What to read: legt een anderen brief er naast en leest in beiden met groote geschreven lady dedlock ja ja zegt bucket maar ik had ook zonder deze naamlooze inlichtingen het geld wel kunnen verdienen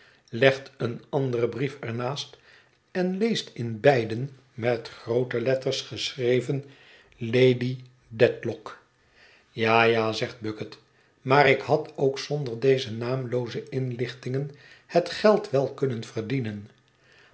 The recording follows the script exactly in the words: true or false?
false